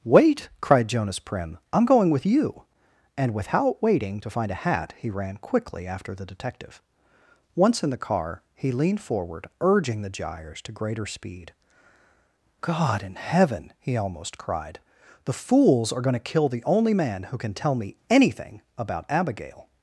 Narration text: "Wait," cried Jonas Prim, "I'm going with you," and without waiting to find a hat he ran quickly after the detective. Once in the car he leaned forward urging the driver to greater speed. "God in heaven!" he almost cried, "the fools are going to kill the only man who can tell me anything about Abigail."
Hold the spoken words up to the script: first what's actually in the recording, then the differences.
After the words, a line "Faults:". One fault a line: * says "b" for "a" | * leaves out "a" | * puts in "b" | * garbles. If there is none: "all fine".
"Wait," cried Jonas Prim, "I'm going with you," and without waiting to find a hat he ran quickly after the detective. Once in the car he leaned forward urging the gyres to greater speed. "God in heaven!" he almost cried, "the fools are going to kill the only man who can tell me anything about Abigail."
Faults:
* says "gyres" for "driver"